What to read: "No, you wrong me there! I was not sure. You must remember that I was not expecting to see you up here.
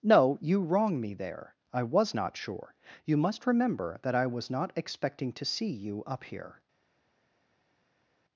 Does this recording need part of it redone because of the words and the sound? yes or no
no